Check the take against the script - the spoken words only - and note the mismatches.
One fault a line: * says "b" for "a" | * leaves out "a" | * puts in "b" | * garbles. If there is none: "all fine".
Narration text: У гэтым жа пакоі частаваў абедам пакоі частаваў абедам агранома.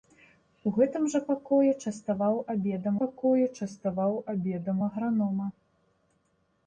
all fine